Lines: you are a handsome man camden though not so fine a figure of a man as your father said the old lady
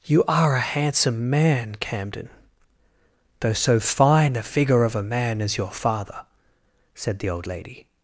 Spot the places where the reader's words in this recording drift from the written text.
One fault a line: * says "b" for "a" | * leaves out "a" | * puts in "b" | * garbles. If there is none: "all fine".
* leaves out "not"